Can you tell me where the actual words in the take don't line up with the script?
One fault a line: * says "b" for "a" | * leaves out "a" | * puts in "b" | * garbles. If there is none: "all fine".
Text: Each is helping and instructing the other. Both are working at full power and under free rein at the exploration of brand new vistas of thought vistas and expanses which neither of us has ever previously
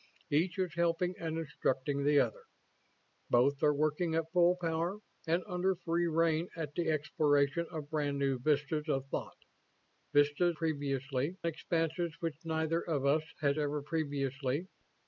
* says "previously" for "and"